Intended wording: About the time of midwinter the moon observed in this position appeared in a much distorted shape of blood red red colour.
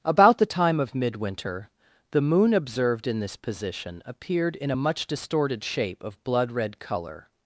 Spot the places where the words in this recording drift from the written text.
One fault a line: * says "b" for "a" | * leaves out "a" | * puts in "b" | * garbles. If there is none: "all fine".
* leaves out "red"